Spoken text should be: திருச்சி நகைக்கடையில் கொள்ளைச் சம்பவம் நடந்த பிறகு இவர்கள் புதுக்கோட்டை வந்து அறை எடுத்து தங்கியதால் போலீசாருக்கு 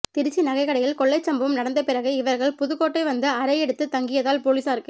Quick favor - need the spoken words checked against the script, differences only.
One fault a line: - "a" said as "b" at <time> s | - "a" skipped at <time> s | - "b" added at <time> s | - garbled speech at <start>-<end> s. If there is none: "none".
none